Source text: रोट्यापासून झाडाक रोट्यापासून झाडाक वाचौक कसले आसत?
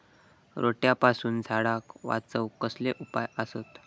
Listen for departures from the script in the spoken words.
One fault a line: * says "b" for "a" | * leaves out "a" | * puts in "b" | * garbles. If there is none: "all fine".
* leaves out "रोट्यापासून झाडाक"
* puts in "उपाय"